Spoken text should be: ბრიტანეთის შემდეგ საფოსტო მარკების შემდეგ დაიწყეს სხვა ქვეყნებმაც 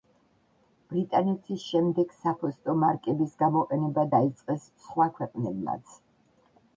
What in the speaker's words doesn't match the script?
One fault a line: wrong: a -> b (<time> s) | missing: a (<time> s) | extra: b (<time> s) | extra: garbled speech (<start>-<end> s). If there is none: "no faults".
wrong: შემდეგ -> გამოყენება (3.4 s)